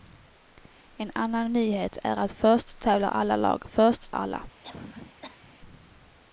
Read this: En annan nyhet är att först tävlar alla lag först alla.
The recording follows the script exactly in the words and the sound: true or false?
false